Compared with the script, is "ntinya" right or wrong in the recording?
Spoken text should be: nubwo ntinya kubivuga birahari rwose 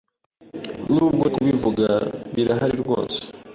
wrong